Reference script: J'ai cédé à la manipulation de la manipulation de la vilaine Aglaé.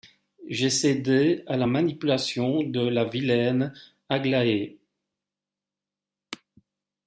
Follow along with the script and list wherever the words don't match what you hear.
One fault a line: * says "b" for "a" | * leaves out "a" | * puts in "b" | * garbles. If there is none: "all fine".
* leaves out "manipulation de la"